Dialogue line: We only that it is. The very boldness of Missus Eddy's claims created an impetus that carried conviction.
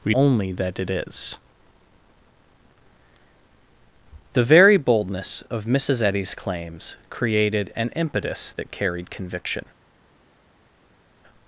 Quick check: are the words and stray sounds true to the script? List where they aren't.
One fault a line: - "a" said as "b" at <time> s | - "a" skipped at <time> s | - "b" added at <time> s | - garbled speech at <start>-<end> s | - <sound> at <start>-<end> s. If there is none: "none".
none